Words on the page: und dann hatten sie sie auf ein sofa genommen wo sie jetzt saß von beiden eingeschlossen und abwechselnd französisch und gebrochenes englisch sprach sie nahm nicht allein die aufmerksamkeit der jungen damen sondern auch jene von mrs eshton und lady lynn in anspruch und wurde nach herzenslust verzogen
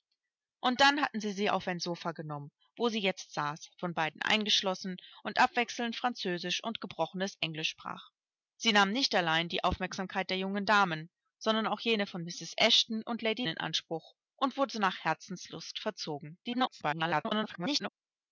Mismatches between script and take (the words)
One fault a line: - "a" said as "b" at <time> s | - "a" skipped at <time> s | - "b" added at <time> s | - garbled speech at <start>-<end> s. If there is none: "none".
- "lynn" skipped at 13.4 s
- garbled speech at 16.4-17.9 s